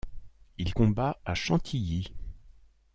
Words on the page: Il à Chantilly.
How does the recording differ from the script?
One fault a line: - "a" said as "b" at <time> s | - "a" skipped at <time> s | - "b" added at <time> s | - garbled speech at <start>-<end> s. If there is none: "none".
- "combat" added at 0.7 s